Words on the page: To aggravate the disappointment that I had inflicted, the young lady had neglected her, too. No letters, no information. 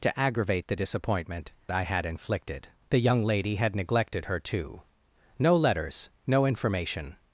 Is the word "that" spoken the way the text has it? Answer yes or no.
no